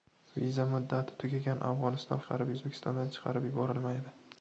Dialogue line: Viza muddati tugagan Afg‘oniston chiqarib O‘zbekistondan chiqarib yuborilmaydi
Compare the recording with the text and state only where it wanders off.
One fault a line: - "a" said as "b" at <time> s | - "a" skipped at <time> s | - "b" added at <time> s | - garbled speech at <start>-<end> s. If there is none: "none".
none